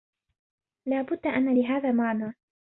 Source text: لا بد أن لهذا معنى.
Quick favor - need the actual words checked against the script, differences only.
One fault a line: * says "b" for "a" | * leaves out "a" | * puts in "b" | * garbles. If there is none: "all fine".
all fine